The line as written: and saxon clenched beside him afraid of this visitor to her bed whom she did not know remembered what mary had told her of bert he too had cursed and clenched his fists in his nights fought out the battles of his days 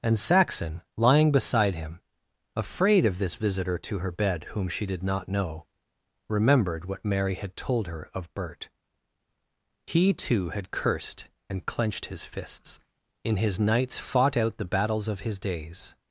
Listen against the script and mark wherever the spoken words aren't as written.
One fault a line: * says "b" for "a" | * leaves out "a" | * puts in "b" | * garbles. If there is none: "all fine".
* says "lying" for "clenched"